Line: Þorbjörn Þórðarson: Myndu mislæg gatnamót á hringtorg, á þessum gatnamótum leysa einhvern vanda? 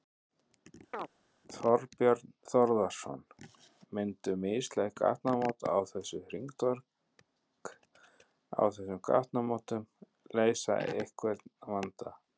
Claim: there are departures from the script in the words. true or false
true